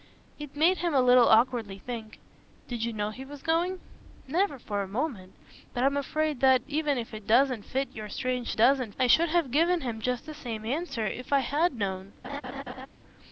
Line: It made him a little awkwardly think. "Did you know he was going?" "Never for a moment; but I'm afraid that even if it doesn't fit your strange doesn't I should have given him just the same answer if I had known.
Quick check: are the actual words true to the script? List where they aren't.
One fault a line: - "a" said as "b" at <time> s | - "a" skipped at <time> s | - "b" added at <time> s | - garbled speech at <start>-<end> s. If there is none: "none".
none